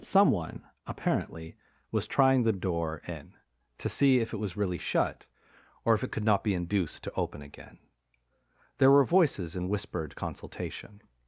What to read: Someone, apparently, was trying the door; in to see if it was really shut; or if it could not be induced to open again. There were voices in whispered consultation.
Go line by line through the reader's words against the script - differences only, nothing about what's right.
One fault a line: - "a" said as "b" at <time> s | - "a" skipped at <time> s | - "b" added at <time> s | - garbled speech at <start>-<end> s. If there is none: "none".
none